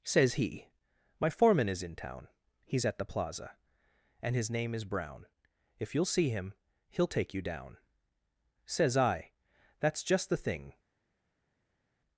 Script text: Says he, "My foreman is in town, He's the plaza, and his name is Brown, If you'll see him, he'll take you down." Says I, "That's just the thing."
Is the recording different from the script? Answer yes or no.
yes